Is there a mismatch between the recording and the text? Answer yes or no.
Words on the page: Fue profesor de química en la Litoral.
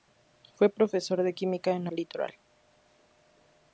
no